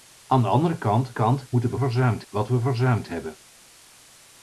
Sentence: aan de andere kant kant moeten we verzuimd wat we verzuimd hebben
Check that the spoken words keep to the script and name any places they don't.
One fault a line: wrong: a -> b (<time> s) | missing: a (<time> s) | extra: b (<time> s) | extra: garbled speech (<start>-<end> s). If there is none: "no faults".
no faults